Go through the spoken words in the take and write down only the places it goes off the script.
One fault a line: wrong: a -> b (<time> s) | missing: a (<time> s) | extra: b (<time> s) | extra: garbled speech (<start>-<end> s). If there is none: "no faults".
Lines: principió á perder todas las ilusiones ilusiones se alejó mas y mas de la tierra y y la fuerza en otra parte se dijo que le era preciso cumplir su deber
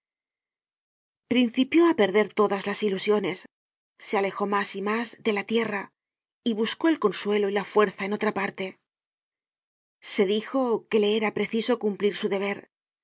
missing: ilusiones (3.4 s)
extra: buscó el consuelo (6.5 s)